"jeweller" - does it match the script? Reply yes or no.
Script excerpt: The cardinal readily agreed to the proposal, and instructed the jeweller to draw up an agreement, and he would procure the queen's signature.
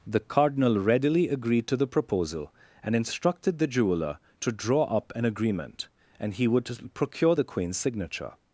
yes